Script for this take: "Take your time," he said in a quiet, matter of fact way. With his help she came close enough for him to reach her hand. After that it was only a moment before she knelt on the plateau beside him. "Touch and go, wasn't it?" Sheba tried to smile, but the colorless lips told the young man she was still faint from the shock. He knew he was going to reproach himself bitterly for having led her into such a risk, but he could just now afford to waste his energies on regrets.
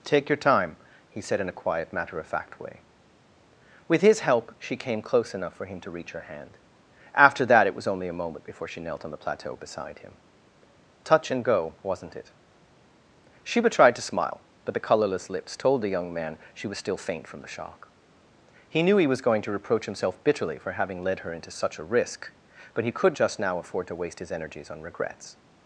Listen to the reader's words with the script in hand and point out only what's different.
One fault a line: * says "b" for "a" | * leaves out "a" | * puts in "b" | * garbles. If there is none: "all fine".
all fine